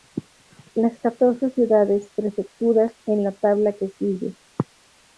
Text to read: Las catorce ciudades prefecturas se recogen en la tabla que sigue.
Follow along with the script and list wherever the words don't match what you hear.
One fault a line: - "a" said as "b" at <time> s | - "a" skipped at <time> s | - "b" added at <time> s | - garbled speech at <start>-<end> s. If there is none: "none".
- "se recogen" skipped at 2.9 s